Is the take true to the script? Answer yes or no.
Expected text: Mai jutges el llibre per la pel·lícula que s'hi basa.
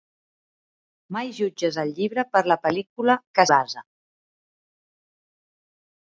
no